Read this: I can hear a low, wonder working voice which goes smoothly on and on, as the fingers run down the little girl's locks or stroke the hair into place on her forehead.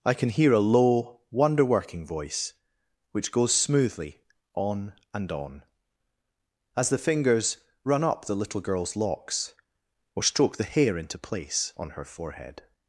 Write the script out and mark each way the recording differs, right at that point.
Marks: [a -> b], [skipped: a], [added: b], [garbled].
I can hear a low, wonder working voice which goes smoothly on and on, as the fingers run [down -> up] the little girl's locks or stroke the hair into place on her forehead.